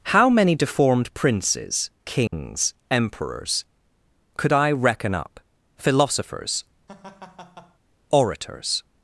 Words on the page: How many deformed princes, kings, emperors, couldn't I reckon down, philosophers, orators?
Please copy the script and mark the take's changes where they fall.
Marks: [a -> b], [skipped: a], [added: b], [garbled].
How many deformed princes, kings, emperors, [couldn't -> could] I reckon [down, -> up] philosophers, orators?